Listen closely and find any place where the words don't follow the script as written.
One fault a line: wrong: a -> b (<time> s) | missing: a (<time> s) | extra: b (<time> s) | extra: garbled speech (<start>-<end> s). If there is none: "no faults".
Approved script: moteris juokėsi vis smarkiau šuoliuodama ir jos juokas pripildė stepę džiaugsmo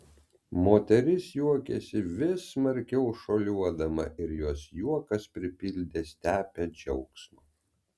no faults